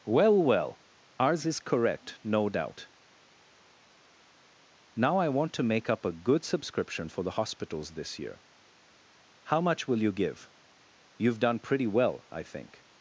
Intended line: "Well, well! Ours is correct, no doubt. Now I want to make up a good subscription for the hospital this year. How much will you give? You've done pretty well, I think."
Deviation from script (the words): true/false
true